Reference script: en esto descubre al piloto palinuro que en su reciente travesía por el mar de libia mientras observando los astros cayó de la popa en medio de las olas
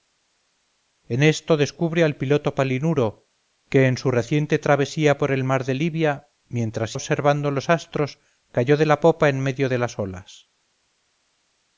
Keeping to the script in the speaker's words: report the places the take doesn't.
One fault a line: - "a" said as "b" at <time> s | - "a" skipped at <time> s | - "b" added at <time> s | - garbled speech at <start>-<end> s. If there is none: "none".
none